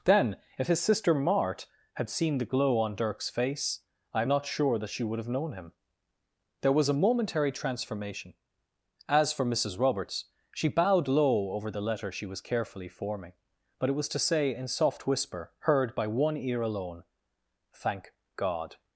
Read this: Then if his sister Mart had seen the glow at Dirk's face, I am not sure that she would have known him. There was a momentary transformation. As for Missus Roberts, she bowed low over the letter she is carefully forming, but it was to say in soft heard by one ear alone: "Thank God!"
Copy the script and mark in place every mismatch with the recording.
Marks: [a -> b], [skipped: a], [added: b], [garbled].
Then if his sister Mart had seen the glow [at -> on] Dirk's face, I am not sure that she would have known him. There was a momentary transformation. As for Missus Roberts, she bowed low over the letter she [is -> was] carefully forming, but it was to say in soft [added: whisper] heard by one ear alone: "Thank God!"